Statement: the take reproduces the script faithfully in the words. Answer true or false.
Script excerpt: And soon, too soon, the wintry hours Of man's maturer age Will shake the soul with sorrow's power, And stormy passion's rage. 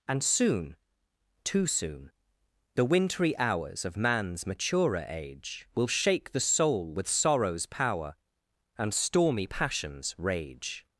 true